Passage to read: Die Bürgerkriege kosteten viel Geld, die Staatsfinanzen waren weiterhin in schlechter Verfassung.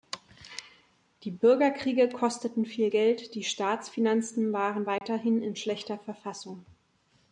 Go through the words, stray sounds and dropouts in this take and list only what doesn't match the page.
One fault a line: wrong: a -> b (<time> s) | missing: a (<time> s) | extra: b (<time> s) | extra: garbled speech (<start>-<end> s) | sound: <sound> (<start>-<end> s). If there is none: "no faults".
sound: dropout (5.0-5.0 s)